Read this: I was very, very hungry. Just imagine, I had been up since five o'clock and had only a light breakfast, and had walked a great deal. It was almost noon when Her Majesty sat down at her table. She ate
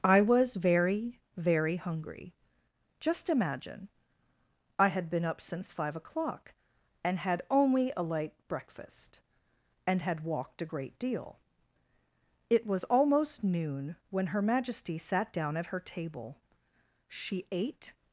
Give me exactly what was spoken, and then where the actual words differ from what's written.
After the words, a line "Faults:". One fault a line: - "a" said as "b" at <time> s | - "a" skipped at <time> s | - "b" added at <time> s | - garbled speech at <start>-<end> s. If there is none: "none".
I was very, very hungry. Just imagine, I had been up since five o'clock and had only a light breakfast, and had walked a great deal. It was almost noon when Her Majesty sat down at her table. She ate
Faults:
none